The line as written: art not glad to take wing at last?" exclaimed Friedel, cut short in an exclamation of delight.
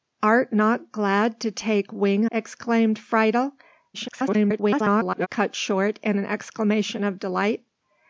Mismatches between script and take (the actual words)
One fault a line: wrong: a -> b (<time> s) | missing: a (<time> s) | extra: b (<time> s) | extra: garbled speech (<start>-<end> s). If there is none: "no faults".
missing: at last (2.2 s)
extra: garbled speech (3.9-5.3 s)